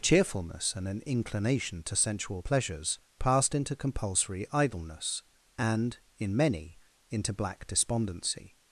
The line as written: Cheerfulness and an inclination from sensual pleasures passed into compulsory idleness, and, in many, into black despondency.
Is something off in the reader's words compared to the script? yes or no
yes